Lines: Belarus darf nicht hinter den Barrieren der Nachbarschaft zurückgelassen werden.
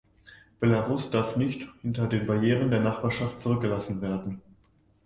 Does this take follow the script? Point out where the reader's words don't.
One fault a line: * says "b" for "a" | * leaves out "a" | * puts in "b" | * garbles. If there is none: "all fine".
all fine